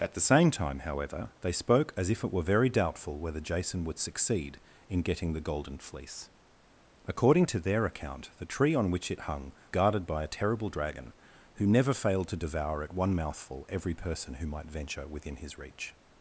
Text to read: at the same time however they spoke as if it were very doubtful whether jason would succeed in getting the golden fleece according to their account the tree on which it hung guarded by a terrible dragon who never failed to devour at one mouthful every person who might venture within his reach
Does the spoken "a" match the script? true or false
true